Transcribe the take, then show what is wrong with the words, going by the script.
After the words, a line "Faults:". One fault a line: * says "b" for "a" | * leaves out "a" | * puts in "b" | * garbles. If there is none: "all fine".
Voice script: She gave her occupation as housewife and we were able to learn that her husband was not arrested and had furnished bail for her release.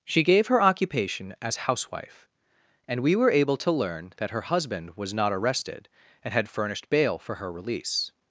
She gave her occupation as housewife and we were able to learn that her husband was not arrested and had furnished bail for her release.
Faults:
all fine